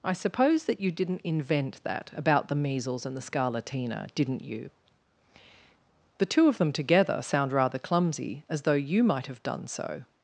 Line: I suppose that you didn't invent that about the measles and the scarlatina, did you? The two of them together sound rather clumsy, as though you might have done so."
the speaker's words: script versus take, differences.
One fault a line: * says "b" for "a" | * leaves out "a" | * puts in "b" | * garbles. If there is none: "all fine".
* says "didn't" for "did"